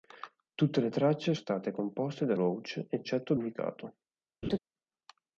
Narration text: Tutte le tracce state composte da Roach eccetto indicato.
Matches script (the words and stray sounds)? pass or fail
fail